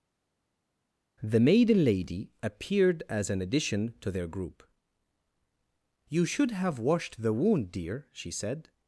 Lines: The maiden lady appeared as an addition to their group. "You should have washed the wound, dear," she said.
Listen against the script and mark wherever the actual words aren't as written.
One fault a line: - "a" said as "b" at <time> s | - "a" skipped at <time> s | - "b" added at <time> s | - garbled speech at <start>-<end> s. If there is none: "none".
none